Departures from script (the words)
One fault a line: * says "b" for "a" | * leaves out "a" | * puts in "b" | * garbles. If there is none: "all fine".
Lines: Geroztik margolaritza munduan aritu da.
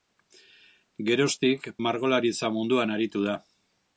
all fine